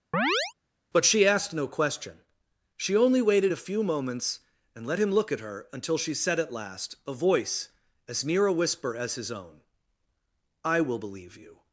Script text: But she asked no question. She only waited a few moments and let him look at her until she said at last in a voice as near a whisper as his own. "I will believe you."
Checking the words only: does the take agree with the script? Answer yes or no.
no